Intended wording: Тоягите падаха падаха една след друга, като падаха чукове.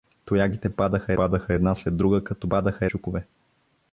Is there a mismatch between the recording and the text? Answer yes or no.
no